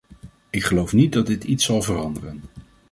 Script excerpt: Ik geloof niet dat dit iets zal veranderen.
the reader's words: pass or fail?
pass